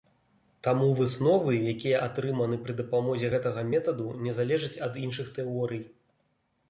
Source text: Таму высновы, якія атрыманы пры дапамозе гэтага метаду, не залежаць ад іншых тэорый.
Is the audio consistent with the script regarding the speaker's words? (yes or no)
yes